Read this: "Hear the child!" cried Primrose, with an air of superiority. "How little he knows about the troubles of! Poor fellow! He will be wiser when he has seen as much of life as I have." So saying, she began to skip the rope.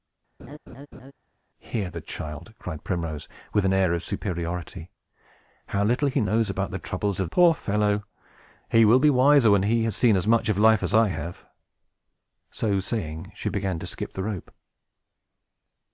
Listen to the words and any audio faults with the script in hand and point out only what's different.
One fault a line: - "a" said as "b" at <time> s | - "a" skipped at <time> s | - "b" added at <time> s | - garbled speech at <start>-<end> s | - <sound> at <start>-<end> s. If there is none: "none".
- laugh at 0.4-1.1 s